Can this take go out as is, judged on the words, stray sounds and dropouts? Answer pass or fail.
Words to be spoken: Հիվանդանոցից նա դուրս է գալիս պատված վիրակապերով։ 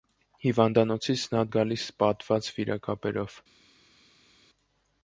fail